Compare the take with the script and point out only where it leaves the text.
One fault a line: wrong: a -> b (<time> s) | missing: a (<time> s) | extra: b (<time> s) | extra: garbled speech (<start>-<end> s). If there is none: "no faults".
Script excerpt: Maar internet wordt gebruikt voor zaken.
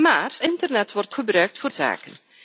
no faults